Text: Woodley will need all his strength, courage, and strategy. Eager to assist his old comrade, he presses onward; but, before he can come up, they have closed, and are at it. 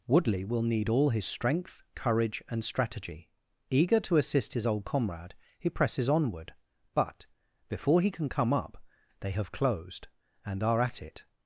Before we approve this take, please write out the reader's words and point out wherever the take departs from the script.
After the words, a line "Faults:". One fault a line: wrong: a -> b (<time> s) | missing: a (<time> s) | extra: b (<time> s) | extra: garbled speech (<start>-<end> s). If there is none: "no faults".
Woodley will need all his strength, courage, and strategy. Eager to assist his old comrade, he presses onward; but, before he can come up, they have closed, and are at it.
Faults:
no faults